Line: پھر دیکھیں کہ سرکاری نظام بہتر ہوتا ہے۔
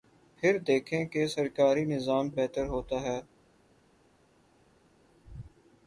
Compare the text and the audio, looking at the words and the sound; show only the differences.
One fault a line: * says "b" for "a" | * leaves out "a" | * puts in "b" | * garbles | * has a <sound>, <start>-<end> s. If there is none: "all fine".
all fine